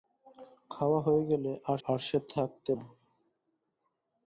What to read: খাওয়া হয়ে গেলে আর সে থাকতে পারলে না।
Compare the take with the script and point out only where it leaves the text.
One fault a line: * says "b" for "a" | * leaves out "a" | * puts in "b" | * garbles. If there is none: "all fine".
* puts in "আর"
* leaves out "পারলে"